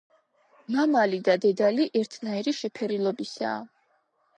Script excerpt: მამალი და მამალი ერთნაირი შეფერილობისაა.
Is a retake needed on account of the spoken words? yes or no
yes